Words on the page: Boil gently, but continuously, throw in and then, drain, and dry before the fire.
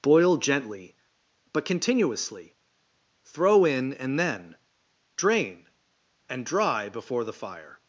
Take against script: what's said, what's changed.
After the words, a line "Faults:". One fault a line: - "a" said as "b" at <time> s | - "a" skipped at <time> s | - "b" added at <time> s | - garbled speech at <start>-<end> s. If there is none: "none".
Boil gently, but continuously, throw in and then, drain, and dry before the fire.
Faults:
none